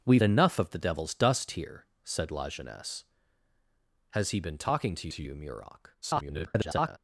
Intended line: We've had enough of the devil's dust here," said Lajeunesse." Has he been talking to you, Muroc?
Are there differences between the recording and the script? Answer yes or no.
yes